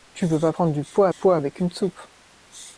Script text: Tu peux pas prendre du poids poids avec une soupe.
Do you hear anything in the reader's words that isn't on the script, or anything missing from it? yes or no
no